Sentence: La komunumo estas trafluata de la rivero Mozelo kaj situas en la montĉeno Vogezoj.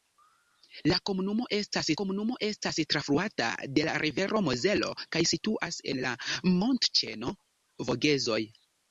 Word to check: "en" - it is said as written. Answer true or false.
true